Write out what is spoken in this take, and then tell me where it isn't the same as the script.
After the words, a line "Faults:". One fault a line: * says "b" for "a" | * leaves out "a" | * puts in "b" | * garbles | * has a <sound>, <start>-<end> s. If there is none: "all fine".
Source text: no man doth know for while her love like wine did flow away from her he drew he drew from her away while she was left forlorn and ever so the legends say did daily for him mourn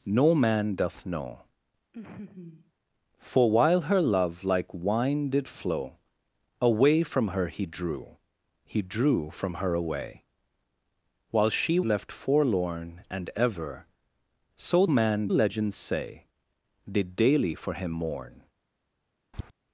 no man doth know for while her love like wine did flow away from her he drew he drew from her away while she left forlorn and ever so man legends say did daily for him mourn
Faults:
* has a laugh, 1.9-2.7 s
* leaves out "was"
* says "man" for "the"
* has a tap, 19.3-19.5 s